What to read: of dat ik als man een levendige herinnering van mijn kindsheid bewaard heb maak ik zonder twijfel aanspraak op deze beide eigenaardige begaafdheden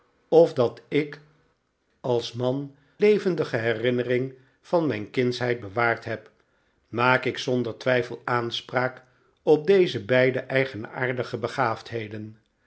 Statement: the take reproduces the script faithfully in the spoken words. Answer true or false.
false